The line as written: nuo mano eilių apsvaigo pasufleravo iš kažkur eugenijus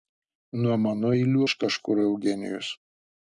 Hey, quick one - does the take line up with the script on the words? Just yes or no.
no